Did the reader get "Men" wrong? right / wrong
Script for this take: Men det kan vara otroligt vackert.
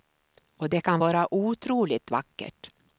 wrong